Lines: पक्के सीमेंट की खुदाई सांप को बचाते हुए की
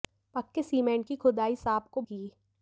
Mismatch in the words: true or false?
true